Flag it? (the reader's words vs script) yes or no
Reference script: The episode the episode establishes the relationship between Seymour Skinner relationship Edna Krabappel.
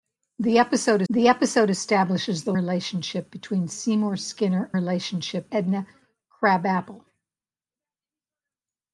no